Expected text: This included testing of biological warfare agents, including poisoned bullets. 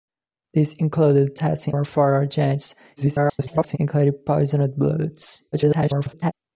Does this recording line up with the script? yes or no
no